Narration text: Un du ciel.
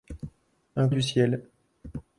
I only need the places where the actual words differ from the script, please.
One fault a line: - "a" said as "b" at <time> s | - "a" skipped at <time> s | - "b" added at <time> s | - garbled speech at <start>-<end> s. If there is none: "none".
none